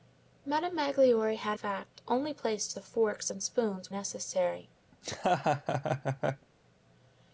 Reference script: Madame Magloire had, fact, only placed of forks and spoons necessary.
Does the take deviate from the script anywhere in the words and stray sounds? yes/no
yes